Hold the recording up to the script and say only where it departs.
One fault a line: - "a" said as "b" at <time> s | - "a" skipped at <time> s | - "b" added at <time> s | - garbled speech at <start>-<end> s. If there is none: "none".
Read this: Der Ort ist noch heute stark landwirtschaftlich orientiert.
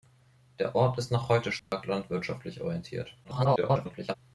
- garbled speech at 3.2-4.1 s